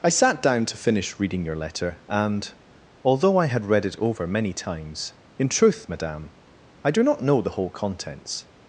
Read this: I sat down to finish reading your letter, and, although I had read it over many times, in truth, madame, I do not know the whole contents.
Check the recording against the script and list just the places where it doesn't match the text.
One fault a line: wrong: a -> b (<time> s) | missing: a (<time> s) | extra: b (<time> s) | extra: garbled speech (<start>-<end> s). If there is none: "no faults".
no faults